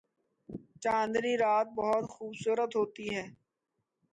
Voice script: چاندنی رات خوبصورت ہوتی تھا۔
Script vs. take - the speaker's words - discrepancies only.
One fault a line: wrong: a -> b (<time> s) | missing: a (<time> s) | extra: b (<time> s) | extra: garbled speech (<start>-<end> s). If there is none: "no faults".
extra: بہت (1.8 s)
wrong: تھا -> ہے (3.1 s)